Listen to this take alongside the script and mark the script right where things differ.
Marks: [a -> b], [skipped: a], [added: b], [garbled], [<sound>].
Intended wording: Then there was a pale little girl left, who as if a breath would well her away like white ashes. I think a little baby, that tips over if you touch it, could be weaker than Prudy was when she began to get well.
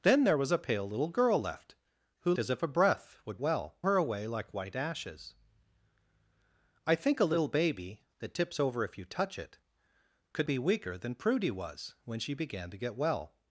Then there was a pale little girl left, who as if a breath would well her away like white ashes. I think a little baby, that tips over if you touch it, could be weaker than Prudy was when she began to get well.